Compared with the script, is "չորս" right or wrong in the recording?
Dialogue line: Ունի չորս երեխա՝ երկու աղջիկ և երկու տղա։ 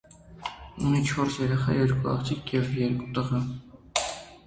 right